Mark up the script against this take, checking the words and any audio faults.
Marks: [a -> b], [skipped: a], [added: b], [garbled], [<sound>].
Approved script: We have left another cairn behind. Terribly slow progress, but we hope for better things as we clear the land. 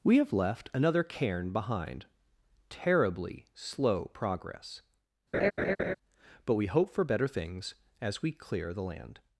We have left another cairn behind. Terribly slow progress, [laugh] but we hope for better things as we clear the land.